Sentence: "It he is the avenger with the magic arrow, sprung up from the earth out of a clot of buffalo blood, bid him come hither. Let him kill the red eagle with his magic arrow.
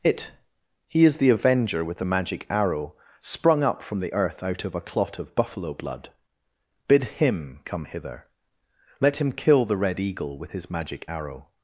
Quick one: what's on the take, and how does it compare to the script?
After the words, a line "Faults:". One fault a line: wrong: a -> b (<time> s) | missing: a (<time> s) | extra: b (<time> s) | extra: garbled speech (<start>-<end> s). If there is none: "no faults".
"It he is the avenger with the magic arrow, sprung up from the earth out of a clot of buffalo blood, bid him come hither. Let him kill the red eagle with his magic arrow.
Faults:
no faults